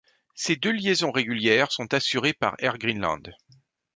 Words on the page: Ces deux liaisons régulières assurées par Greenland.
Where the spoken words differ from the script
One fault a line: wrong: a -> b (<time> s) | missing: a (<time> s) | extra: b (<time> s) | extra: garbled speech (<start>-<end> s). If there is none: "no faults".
extra: sont (1.7 s)
extra: Air (2.6 s)